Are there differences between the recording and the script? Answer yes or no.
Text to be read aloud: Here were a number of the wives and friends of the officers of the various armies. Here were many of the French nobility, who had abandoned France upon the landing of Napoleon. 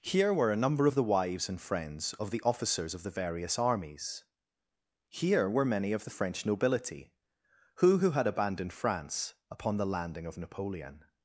yes